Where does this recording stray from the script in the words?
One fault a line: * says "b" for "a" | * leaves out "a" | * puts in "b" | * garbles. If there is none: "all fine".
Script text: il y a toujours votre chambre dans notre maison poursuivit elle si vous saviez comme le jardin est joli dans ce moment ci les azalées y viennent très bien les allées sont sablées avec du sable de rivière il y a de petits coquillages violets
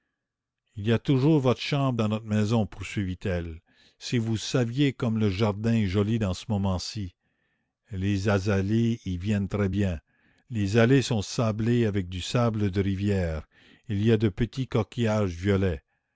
all fine